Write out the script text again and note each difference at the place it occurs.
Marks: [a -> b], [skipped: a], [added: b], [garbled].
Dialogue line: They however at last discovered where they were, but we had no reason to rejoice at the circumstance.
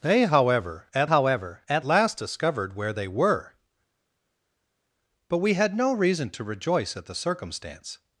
They however at [added: however at] last discovered where they were, but we had no reason to rejoice at the circumstance.